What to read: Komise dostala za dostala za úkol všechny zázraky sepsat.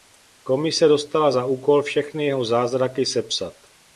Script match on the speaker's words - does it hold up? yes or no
no